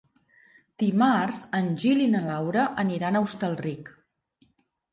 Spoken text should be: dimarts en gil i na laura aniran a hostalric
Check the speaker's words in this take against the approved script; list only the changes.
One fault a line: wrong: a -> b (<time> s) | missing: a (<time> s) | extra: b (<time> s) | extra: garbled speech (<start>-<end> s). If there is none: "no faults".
no faults